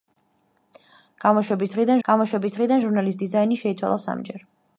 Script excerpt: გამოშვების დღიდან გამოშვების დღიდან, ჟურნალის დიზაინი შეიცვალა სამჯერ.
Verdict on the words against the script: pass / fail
pass